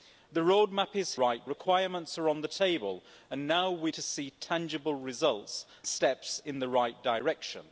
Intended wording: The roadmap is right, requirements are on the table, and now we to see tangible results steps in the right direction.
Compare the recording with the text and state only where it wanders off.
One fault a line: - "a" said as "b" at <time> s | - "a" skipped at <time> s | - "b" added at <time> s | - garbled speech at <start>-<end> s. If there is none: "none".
none